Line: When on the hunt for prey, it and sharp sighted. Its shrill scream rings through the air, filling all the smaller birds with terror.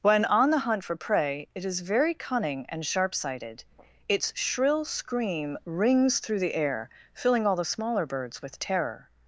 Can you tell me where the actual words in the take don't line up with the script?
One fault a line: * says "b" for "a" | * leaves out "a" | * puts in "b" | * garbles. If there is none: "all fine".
* puts in "is very cunning"